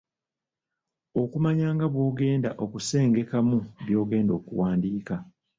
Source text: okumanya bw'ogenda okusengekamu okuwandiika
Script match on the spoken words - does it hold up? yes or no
no